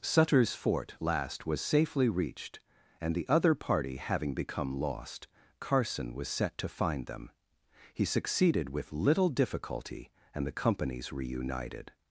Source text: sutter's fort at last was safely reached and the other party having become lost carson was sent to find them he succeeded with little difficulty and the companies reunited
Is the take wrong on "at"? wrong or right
wrong